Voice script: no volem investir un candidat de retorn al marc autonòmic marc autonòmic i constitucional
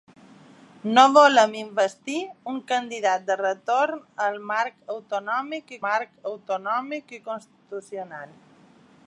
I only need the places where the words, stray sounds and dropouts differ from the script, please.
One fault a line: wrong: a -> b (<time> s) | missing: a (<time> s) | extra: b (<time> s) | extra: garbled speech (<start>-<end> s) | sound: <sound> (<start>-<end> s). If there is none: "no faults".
no faults